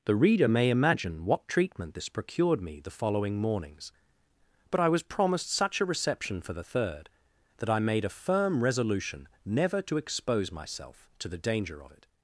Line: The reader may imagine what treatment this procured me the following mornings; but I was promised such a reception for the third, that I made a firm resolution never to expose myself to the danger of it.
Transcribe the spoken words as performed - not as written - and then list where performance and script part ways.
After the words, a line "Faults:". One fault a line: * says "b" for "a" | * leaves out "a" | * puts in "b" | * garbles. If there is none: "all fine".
The reader may imagine what treatment this procured me the following mornings; but I was promised such a reception for the third, that I made a firm resolution never to expose myself to the danger of it.
Faults:
all fine